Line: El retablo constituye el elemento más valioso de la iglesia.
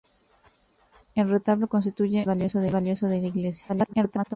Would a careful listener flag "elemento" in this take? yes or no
yes